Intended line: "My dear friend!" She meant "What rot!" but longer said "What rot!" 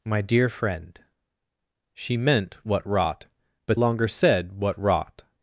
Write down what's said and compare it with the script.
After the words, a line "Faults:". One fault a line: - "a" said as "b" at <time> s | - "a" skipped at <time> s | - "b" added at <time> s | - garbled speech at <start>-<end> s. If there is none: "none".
"My dear friend!" She meant "What rot!" but longer said "What rot!"
Faults:
none